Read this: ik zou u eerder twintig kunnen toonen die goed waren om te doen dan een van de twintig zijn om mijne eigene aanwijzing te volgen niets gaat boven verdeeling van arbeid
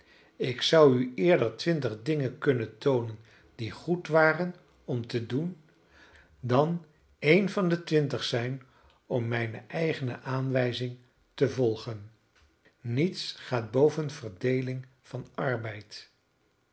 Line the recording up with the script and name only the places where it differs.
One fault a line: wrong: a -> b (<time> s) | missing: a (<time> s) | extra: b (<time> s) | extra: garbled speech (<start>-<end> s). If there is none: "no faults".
extra: dingen (2.0 s)